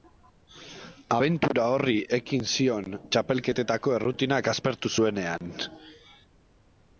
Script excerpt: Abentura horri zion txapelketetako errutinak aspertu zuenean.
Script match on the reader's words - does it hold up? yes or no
no